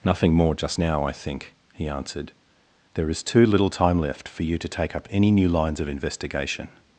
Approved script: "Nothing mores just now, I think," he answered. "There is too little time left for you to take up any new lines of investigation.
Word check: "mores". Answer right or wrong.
wrong